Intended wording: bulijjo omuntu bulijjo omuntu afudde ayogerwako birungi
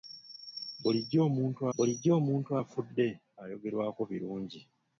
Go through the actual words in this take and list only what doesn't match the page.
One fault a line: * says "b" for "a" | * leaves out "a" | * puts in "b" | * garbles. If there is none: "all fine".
all fine